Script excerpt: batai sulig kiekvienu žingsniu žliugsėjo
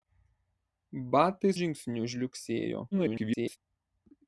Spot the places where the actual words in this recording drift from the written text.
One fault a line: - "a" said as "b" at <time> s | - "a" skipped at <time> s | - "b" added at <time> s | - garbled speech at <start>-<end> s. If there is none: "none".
- "sulig kiekvienu" skipped at 1.5 s
- garbled speech at 2.9-3.6 s